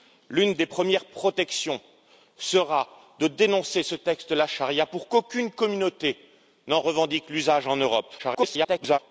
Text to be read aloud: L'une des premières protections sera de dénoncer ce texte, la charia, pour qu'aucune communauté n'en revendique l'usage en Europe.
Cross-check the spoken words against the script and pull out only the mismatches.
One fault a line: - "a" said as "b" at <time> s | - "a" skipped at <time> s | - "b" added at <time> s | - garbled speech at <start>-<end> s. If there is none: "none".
- garbled speech at 8.2-9.0 s